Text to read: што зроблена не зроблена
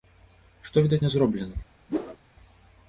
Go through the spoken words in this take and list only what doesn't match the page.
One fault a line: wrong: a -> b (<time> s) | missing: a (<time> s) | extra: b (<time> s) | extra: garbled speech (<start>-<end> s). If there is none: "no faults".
wrong: зроблена -> відаць (0.9 s)